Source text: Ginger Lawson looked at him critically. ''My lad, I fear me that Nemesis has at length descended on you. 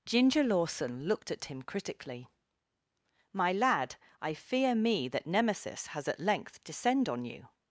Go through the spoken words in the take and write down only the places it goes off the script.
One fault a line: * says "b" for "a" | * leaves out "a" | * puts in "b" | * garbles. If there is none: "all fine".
* says "descend" for "descended"